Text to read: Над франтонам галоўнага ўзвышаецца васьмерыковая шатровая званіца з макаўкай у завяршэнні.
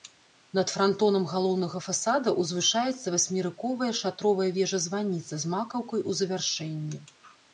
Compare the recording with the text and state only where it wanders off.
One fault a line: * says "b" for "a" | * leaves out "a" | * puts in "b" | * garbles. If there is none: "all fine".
* puts in "фасада"
* puts in "вежа"